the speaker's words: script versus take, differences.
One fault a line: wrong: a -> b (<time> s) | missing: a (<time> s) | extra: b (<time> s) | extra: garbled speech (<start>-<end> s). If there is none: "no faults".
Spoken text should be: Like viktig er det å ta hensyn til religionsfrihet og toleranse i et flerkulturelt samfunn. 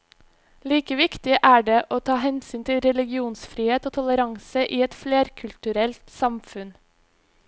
no faults